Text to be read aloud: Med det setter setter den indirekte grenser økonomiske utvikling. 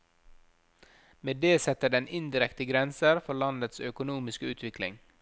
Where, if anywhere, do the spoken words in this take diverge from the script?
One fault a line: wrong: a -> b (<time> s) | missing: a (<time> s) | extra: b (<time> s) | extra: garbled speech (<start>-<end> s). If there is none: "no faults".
missing: setter (1.9 s)
extra: for landets (3.2 s)